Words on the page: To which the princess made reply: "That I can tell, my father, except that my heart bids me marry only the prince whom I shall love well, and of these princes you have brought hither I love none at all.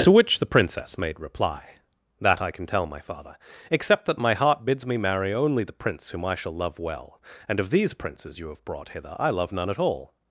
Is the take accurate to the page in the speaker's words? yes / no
yes